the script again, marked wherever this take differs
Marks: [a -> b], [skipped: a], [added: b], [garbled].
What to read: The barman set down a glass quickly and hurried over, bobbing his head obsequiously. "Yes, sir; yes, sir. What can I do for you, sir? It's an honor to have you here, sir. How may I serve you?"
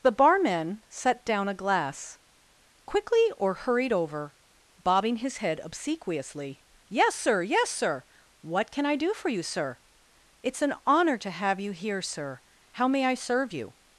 The barman set down a glass quickly [and -> or] hurried over, bobbing his head obsequiously. "Yes, sir; yes, sir. What can I do for you, sir? It's an honor to have you here, sir. How may I serve you?"